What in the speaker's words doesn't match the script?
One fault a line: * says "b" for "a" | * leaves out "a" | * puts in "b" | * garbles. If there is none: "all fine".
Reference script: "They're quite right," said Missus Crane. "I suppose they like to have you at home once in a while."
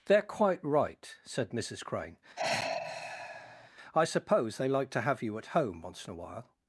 all fine